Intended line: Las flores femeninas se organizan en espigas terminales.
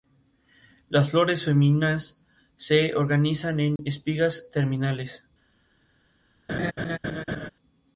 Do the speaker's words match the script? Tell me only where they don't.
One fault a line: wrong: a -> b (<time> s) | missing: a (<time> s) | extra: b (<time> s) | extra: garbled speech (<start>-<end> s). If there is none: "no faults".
no faults